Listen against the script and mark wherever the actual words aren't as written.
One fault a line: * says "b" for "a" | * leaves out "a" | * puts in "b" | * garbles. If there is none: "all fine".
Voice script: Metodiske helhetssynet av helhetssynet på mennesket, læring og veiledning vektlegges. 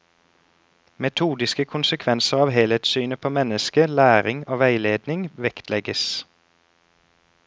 * says "konsekvenser" for "helhetssynet"